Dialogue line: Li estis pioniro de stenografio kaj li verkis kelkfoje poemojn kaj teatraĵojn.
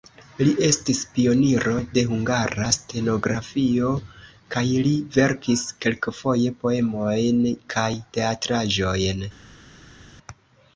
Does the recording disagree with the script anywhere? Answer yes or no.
yes